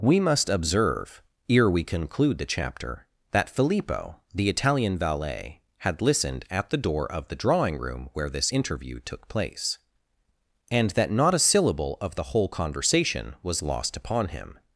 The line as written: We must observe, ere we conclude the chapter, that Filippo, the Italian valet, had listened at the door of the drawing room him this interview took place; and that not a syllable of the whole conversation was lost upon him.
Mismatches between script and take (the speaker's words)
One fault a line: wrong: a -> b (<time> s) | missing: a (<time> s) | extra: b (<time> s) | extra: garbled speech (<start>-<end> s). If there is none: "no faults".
wrong: him -> where (8.1 s)